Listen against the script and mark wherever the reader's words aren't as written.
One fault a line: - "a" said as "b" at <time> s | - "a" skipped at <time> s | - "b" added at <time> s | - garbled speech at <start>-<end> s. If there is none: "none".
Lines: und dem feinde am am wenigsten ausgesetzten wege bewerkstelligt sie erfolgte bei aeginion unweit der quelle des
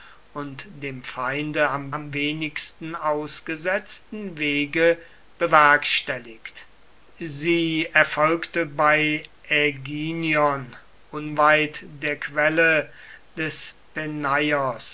none